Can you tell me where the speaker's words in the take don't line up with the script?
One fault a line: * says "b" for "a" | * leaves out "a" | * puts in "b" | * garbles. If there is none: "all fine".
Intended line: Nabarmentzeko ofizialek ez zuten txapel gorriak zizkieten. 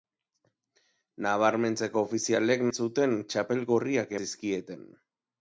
all fine